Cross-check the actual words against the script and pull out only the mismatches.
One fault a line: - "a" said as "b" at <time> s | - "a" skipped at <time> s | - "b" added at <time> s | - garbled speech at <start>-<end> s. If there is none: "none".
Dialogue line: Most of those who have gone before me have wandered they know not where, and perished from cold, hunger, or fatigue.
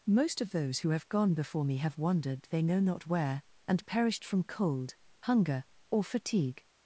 none